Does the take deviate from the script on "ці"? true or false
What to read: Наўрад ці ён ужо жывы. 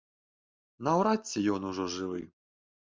false